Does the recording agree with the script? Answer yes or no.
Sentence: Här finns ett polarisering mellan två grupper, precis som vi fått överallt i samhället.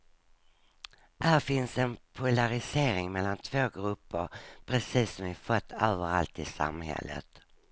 no